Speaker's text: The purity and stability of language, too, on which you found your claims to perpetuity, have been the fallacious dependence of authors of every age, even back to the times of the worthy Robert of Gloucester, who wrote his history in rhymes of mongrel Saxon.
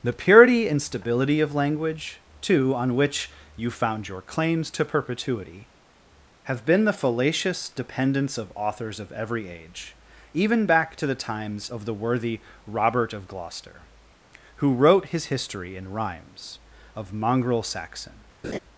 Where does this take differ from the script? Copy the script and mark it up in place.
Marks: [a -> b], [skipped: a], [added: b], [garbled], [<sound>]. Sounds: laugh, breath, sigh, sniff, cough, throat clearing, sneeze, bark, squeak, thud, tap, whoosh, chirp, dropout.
The purity and stability of language, too, on which you found your claims to perpetuity, have been the fallacious dependence of authors of every age, even back to the times of the worthy Robert of Gloucester, who wrote his history in rhymes of mongrel Saxon. [laugh]